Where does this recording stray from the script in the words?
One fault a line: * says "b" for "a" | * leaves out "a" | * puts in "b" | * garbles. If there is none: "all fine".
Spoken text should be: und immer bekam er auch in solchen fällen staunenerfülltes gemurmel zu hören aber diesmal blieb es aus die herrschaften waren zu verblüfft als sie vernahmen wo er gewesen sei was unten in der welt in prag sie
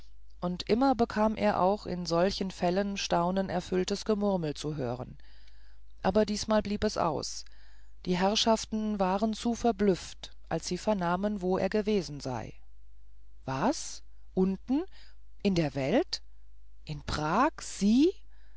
all fine